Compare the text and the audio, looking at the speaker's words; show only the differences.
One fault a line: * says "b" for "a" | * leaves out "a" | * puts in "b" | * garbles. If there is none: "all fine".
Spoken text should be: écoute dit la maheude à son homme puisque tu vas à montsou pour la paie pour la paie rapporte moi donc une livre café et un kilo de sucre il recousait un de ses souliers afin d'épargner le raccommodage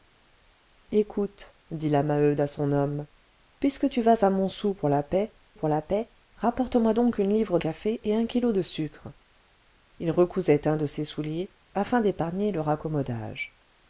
all fine